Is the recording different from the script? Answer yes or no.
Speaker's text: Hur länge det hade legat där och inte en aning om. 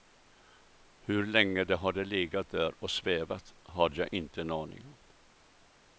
yes